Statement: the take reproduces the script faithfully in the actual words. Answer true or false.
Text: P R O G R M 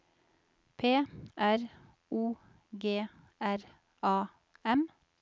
false